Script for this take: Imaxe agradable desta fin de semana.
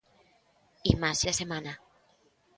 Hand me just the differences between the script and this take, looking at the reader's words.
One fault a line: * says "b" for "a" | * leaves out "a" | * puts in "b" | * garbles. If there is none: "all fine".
* leaves out "agradable desta fin"